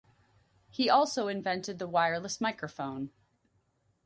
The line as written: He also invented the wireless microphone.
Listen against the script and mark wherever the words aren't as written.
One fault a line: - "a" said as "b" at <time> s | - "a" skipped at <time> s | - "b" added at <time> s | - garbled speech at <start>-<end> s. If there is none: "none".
none